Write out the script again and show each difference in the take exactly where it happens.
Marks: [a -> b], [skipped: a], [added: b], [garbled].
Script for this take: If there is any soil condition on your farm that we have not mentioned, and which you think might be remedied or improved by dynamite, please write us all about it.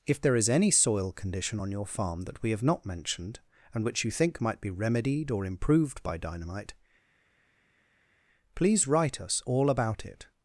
If there is any soil condition on your farm that we have not mentioned, and which you think might be remedied or improved by dynamite, please write us all about it.